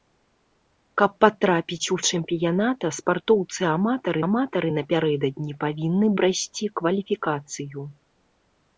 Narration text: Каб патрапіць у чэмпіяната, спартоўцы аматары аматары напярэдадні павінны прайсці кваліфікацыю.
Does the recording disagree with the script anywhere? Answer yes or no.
no